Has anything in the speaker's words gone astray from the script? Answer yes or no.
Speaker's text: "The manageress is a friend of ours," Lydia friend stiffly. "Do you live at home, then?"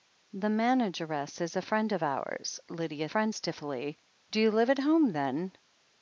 no